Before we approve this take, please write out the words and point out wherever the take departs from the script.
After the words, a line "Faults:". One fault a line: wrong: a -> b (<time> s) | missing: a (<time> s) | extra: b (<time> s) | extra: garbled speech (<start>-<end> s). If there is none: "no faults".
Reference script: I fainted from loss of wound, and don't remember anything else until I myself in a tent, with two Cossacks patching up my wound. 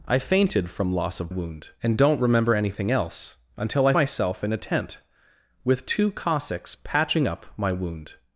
I fainted from loss of wound, and don't remember anything else until I myself in a tent, with two Cossacks patching up my wound.
Faults:
no faults